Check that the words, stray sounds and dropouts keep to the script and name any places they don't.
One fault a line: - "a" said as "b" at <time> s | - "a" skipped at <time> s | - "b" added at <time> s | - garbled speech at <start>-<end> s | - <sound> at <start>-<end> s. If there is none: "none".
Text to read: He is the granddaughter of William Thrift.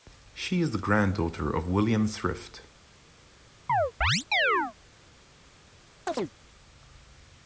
- "He" said as "She" at 0.3 s
- chirp at 3.7-4.7 s
- chirp at 6.1-6.3 s